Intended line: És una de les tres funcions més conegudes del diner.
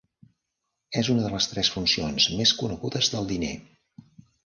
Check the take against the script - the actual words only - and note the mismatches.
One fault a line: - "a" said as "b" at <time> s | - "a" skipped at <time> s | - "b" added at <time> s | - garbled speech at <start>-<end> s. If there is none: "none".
none